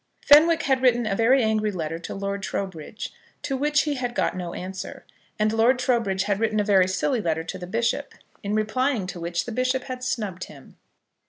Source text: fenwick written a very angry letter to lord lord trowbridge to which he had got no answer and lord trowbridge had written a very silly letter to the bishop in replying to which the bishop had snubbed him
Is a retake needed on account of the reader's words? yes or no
yes